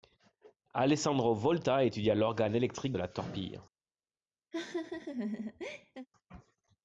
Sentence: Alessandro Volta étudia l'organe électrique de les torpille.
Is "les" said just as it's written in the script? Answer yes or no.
no